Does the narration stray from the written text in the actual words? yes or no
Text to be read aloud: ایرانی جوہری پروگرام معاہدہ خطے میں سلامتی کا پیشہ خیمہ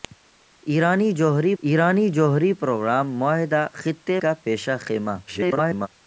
yes